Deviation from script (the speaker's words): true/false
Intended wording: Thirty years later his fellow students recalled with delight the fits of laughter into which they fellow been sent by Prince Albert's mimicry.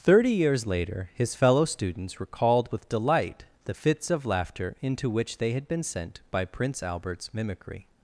true